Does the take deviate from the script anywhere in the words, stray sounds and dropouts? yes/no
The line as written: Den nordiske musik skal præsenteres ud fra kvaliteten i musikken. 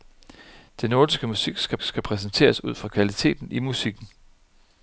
yes